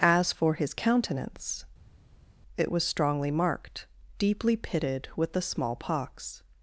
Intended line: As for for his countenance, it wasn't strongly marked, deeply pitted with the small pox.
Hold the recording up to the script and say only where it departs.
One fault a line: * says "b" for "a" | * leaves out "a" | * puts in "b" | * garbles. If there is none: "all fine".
* leaves out "for"
* says "was" for "wasn't"